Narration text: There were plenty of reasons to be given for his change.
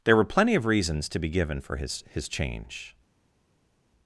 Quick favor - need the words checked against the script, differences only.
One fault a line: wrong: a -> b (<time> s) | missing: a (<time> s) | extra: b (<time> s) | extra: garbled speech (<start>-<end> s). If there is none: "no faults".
extra: his (2.1 s)